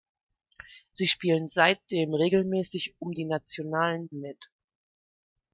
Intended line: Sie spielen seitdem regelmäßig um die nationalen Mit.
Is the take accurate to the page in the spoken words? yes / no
yes